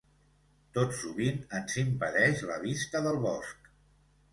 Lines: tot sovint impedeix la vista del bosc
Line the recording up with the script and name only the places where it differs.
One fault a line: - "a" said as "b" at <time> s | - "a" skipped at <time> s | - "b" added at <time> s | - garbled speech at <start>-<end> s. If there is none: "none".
- "ens" added at 1.6 s